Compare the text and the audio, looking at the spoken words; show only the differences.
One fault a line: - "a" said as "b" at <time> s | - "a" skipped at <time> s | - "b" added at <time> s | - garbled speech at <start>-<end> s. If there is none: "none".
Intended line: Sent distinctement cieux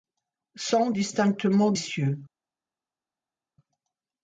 none